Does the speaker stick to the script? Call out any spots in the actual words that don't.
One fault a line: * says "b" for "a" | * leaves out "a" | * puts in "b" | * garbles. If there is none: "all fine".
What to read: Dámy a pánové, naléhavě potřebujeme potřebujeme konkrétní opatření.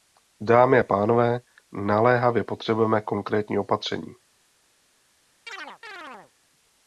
* leaves out "potřebujeme"